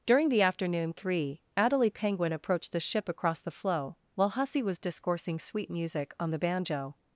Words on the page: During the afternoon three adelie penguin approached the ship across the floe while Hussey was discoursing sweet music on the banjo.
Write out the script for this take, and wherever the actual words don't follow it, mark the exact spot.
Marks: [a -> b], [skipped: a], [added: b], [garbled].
During the afternoon three adelie penguin approached the ship across the floe while Hussey was discoursing sweet music on the banjo.